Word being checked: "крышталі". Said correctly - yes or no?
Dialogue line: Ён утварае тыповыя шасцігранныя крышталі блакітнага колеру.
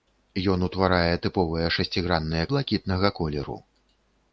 no